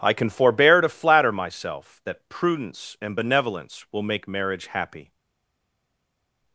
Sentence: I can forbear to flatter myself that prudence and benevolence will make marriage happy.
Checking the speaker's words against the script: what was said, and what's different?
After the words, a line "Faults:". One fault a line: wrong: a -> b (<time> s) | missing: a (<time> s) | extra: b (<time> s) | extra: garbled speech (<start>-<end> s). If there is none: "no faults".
I can forbear to flatter myself that prudence and benevolence will make marriage happy.
Faults:
no faults